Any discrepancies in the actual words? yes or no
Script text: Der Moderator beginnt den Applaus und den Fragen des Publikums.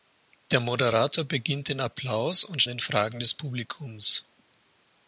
no